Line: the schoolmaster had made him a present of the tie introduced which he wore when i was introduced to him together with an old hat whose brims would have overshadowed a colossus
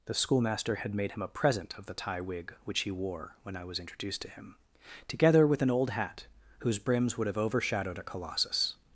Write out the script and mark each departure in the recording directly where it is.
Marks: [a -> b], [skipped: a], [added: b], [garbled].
the schoolmaster had made him a present of the tie [introduced -> wig] which he wore when i was introduced to him together with an old hat whose brims would have overshadowed a colossus